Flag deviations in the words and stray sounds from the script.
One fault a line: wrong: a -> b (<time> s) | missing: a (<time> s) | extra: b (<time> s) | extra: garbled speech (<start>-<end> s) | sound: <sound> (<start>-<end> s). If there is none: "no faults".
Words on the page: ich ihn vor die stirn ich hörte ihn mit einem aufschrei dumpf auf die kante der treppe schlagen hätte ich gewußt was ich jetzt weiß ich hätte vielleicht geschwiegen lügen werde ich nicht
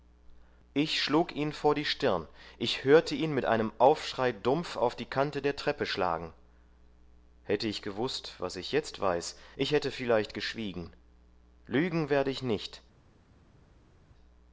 extra: schlug (1.0 s)